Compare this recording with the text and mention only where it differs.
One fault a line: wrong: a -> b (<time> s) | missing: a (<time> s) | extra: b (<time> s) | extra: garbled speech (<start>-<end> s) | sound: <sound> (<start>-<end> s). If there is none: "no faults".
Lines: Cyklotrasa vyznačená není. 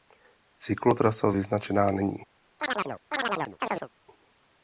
sound: chirp (2.6-3.9 s)